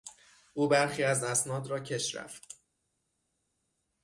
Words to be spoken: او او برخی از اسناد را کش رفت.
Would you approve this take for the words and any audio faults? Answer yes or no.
no